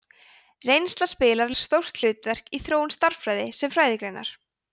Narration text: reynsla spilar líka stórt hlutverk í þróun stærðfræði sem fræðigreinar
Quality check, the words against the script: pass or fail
fail